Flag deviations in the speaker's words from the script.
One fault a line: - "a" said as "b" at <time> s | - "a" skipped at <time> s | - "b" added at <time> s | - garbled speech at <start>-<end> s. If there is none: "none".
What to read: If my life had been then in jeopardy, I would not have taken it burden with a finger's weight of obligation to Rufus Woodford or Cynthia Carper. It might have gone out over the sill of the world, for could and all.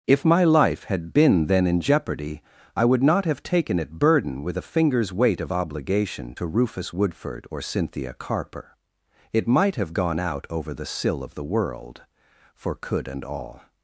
none